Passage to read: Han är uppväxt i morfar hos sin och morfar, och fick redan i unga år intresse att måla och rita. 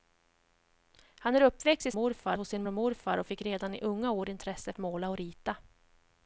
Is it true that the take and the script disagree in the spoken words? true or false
false